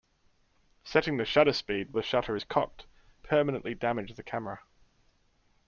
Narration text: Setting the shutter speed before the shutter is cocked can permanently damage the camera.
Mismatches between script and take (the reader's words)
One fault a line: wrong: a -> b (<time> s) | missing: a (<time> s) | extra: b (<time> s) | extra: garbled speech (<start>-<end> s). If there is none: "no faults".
missing: before (1.9 s)
missing: can (2.9 s)